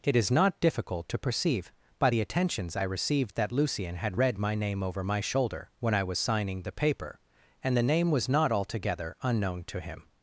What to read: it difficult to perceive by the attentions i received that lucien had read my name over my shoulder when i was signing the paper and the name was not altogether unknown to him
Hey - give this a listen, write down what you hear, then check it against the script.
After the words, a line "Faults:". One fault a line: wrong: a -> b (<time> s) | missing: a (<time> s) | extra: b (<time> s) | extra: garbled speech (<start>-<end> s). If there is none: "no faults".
it is not difficult to perceive by the attentions i received that lucien had read my name over my shoulder when i was signing the paper and the name was not altogether unknown to him
Faults:
extra: is not (0.1 s)